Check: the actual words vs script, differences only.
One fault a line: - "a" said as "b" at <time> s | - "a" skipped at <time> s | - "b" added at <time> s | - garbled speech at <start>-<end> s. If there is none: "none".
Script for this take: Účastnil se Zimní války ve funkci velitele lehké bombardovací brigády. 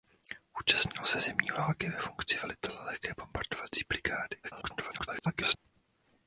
- garbled speech at 4.4-5.6 s